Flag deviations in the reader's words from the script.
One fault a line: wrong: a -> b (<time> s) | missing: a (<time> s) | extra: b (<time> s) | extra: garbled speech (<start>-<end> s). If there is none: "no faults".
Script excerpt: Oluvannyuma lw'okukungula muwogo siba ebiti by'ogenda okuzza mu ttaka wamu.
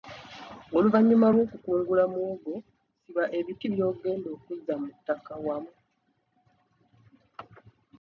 no faults